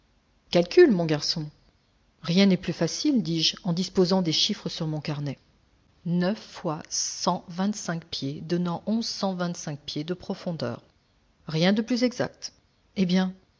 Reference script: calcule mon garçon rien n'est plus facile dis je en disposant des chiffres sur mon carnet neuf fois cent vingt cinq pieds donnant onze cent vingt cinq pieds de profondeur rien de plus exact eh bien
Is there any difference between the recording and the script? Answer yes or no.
no